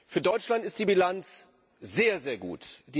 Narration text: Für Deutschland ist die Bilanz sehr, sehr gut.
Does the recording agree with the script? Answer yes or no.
yes